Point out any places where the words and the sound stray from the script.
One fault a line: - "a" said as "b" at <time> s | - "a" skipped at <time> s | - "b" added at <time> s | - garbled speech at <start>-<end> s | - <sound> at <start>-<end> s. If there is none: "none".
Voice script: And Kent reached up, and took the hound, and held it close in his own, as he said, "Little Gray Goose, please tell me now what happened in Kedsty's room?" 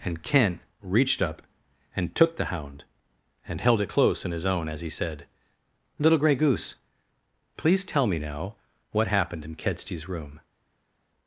none